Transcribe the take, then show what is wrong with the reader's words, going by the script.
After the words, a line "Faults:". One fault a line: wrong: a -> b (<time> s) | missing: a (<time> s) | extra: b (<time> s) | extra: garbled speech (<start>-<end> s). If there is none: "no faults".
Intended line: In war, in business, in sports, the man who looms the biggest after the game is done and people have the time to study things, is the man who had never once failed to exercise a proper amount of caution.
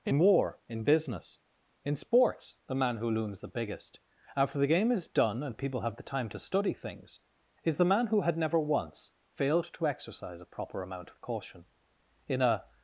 In war, in business, in sports, the man who looms the biggest after the game is done and people have the time to study things, is the man who had never once failed to exercise a proper amount of caution. In a
Faults:
extra: In a (12.3 s)